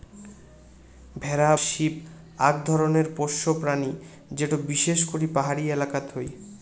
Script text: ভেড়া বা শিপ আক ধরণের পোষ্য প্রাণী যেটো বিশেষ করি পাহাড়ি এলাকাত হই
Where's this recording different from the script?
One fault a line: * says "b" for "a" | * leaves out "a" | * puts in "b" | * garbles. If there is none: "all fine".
* leaves out "বা"